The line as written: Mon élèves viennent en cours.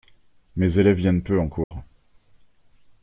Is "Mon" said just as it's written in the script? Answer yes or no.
no